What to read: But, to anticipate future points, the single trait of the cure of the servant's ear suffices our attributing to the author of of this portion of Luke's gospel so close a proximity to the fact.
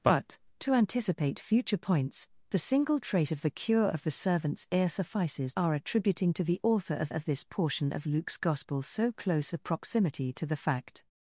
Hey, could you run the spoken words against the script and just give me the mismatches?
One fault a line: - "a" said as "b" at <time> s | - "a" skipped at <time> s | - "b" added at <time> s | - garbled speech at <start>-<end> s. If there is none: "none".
none